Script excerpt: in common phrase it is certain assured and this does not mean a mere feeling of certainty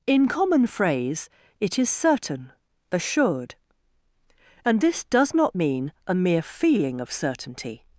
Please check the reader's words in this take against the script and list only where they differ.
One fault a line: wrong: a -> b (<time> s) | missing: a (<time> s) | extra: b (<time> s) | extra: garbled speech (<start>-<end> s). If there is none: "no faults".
no faults